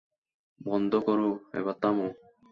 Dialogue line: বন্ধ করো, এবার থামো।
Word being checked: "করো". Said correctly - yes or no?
yes